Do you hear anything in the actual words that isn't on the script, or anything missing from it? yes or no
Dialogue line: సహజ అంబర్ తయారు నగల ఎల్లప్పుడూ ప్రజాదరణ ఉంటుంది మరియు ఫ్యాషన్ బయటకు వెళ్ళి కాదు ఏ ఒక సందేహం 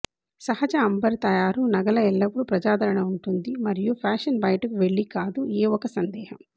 no